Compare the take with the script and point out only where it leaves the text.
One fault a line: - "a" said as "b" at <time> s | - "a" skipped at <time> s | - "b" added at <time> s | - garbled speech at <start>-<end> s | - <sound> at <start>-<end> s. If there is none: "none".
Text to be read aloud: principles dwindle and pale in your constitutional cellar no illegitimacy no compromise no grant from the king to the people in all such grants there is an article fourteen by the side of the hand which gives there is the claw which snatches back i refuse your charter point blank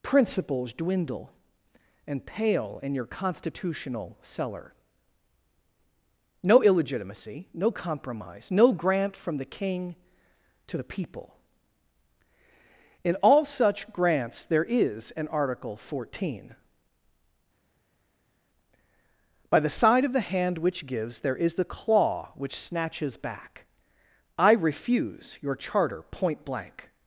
none